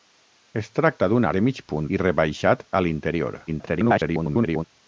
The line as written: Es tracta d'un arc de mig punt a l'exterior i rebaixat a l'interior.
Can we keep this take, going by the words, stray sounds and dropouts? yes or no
no